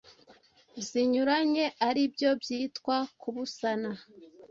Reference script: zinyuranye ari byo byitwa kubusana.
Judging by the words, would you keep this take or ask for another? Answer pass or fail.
pass